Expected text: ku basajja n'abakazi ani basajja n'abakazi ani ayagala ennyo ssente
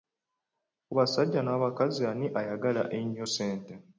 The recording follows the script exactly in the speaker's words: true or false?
false